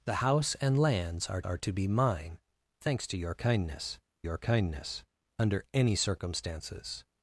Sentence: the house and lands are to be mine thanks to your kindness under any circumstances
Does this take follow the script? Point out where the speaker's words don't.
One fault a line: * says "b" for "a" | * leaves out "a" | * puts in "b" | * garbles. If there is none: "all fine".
* puts in "are"
* puts in "your kindness"